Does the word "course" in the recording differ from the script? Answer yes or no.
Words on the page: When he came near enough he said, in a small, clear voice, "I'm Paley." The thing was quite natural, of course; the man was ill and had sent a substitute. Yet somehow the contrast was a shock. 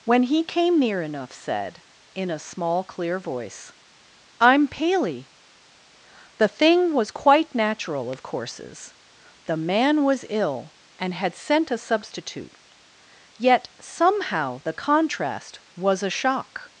yes